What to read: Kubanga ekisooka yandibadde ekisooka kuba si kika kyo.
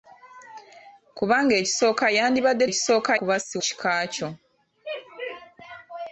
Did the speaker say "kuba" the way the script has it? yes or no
yes